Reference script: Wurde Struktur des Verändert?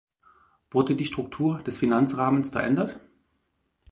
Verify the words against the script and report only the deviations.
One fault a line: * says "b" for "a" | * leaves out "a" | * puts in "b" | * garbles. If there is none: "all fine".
* puts in "die"
* puts in "Finanzrahmens"